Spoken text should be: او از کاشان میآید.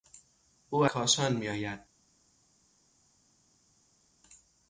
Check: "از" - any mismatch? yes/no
yes